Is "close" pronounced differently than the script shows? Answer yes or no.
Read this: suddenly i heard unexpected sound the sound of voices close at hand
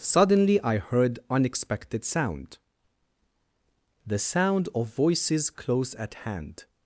no